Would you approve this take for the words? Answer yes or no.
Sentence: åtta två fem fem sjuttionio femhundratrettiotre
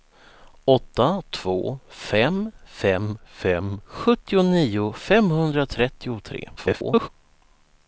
no